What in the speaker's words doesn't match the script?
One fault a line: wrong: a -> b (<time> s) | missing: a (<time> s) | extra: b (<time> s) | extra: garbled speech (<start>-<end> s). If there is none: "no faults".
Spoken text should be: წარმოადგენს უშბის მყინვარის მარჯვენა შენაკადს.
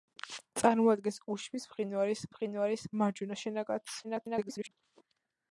extra: მყინვარის (2.4 s)
extra: garbled speech (4.0-4.7 s)